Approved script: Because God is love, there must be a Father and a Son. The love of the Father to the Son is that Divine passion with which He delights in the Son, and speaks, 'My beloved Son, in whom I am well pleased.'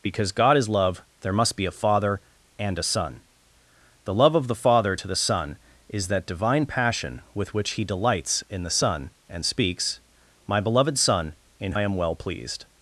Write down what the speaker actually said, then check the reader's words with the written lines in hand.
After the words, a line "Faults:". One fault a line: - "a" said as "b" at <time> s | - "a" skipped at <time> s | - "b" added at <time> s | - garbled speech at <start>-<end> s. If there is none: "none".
Because God is love, there must be a Father and a Son. The love of the Father to the Son is that Divine passion with which He delights in the Son, and speaks, 'My beloved Son, in I am well pleased.'
Faults:
- "whom" skipped at 11.7 s